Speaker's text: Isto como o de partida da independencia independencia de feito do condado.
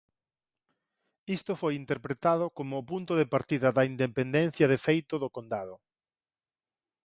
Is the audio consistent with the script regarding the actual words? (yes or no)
no